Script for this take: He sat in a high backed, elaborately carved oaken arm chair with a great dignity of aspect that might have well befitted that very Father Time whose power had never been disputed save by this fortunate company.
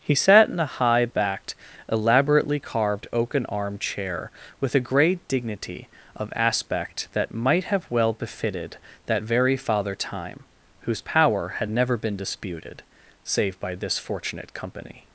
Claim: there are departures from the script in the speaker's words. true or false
false